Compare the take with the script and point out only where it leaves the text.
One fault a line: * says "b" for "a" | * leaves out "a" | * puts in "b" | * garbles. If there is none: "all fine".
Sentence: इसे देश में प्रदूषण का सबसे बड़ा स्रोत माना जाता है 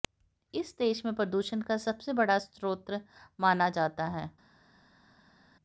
all fine